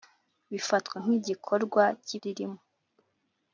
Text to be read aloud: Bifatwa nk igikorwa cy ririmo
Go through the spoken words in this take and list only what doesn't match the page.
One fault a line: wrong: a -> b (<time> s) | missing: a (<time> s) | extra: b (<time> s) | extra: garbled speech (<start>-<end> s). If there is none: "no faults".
no faults